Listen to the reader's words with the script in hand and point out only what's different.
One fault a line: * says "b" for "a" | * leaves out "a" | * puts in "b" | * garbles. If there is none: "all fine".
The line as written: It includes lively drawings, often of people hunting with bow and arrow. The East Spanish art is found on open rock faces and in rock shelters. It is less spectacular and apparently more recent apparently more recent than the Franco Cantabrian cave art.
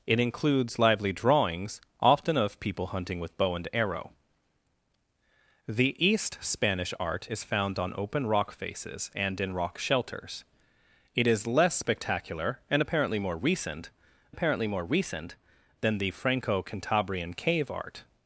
all fine